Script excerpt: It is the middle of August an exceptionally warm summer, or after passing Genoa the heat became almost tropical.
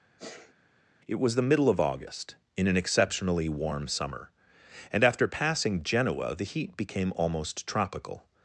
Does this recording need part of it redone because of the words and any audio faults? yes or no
yes